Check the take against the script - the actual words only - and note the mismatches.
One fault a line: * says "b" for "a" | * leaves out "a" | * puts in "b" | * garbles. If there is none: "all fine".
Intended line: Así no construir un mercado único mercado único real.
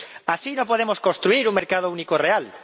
* puts in "podemos"
* leaves out "mercado único"